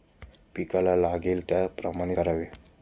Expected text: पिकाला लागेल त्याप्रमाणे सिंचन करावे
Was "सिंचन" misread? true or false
true